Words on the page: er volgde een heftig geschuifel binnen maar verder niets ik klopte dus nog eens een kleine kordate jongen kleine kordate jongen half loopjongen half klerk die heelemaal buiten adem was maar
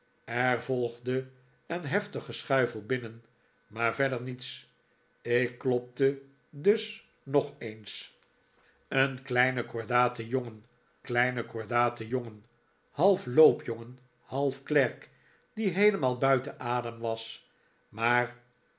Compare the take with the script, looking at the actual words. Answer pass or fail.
pass